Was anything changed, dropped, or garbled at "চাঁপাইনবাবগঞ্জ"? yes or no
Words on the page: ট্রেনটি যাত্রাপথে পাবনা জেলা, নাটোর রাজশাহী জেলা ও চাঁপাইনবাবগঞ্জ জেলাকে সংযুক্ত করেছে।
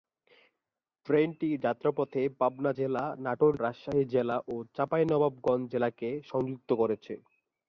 no